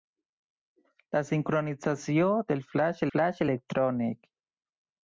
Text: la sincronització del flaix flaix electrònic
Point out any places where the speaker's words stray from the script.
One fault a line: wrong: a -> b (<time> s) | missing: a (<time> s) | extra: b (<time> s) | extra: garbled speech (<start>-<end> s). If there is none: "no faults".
no faults